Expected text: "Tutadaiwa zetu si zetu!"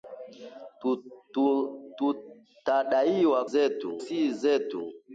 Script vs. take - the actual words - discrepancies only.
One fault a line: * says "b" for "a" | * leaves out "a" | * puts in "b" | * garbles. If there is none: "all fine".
all fine